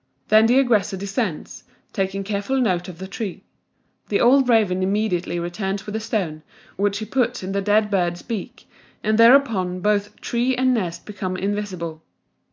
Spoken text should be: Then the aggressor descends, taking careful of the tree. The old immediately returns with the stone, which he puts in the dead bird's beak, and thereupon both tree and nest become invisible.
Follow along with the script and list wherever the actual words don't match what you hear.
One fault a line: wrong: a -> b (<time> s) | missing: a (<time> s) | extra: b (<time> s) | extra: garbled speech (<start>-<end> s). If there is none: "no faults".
extra: note (2.6 s)
extra: raven (4.5 s)